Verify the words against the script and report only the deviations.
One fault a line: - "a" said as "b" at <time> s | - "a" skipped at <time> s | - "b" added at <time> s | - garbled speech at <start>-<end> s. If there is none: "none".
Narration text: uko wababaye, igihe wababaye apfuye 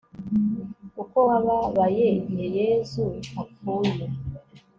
- "wababaye" said as "yezu" at 2.6 s